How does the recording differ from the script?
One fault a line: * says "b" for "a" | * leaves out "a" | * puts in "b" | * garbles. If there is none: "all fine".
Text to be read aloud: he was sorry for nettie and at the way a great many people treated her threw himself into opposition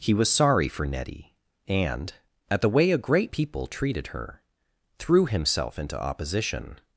* leaves out "many"